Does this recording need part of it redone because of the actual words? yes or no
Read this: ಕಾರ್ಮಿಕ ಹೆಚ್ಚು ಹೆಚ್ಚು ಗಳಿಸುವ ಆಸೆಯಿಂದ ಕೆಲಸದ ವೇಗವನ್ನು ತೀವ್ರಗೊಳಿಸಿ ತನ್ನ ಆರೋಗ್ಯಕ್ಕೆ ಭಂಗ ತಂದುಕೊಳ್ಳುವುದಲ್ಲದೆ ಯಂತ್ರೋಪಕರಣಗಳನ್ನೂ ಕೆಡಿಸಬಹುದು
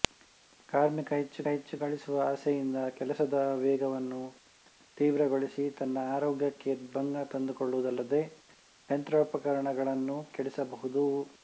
no